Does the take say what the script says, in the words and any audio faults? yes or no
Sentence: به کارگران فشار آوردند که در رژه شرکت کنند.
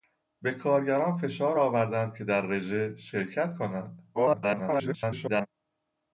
no